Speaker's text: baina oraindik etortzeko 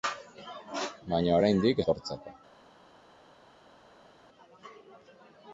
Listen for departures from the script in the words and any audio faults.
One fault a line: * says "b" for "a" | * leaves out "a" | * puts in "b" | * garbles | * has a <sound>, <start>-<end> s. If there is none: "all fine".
all fine